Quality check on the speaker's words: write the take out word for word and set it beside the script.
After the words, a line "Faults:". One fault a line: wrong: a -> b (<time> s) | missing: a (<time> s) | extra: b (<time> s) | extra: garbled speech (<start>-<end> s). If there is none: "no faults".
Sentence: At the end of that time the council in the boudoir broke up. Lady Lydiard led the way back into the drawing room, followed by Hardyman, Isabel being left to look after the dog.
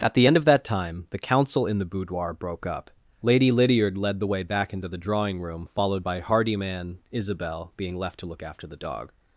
At the end of that time the council in the boudoir broke up. Lady Lydiard led the way back into the drawing room, followed by Hardyman, Isabel being left to look after the dog.
Faults:
no faults